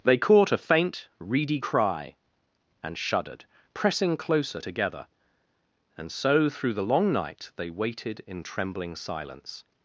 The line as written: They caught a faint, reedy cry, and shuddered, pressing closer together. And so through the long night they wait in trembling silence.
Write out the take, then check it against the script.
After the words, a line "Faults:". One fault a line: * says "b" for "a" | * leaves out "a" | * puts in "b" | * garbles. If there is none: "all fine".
They caught a faint, reedy cry, and shuddered, pressing closer together. And so through the long night they waited in trembling silence.
Faults:
* says "waited" for "wait"